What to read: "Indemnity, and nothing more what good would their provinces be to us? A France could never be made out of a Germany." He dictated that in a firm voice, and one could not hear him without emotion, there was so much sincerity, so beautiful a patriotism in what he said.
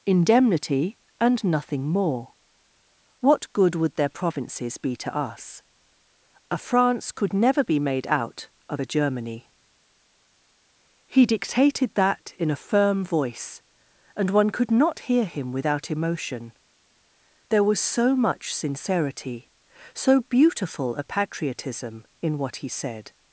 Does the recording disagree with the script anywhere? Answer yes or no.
no